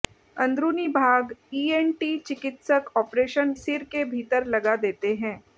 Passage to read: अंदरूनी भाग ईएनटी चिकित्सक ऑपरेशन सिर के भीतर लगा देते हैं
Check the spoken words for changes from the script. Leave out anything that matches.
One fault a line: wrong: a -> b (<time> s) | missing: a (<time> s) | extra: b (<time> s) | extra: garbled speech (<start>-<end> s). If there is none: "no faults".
no faults